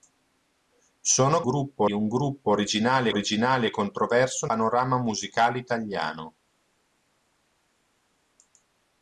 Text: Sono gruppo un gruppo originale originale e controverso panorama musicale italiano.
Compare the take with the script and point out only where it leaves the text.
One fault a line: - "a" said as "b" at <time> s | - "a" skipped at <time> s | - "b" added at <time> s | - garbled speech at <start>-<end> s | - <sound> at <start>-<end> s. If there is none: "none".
none